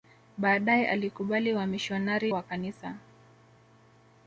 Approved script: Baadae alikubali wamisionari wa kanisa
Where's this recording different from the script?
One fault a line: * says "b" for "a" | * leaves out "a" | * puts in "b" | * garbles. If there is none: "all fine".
all fine